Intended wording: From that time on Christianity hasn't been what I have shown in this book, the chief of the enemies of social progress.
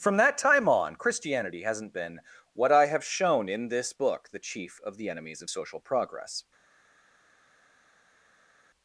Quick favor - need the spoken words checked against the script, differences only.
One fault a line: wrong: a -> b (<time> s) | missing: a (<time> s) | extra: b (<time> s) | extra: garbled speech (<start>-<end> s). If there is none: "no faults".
no faults